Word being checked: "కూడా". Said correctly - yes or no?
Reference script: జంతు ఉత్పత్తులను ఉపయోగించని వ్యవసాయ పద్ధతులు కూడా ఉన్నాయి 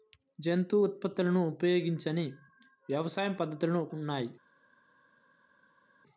no